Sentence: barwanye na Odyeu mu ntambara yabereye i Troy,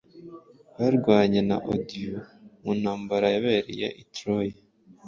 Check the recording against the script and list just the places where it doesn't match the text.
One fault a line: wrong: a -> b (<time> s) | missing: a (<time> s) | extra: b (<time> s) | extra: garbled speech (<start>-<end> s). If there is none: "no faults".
no faults